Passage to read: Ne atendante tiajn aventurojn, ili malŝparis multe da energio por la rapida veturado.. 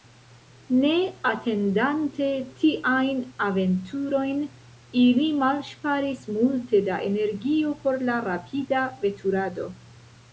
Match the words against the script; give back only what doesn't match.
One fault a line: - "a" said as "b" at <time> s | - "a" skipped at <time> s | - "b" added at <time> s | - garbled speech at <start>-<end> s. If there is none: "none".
none